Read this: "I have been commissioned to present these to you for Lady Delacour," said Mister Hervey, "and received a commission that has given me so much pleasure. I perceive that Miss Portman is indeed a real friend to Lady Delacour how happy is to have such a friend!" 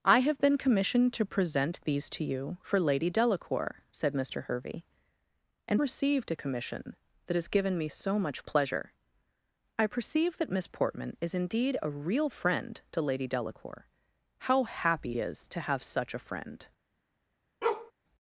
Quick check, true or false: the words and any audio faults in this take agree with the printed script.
false